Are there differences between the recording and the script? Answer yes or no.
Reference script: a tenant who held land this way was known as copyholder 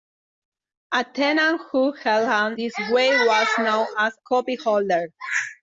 no